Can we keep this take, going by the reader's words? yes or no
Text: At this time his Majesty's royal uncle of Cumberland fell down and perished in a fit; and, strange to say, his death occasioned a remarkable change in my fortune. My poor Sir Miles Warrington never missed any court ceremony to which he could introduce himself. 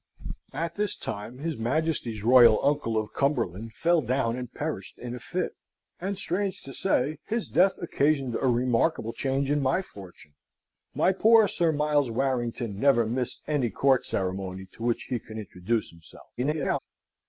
no